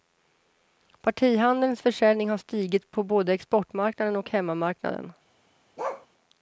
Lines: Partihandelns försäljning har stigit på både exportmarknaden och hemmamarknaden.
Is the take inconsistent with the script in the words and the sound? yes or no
yes